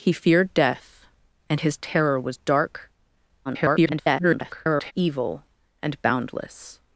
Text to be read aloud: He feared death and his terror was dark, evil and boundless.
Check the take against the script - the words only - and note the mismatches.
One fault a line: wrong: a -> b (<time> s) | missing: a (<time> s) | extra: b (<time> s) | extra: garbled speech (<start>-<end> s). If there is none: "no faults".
extra: garbled speech (3.4-4.9 s)